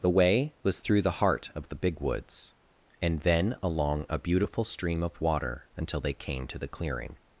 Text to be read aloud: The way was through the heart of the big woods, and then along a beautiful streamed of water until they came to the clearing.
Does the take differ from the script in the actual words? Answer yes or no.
yes